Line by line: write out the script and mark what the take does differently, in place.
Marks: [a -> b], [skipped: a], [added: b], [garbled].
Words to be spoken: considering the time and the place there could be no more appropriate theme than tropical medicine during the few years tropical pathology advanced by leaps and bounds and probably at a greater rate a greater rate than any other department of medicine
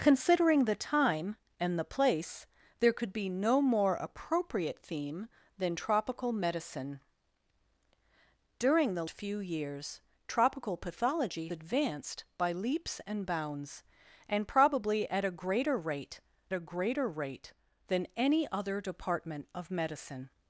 considering the time and the place there could be no more appropriate theme than tropical medicine during the few years tropical pathology advanced by leaps and bounds and probably at a greater rate a greater rate than any other department of medicine